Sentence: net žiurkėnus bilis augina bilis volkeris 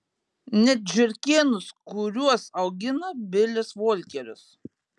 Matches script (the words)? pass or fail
fail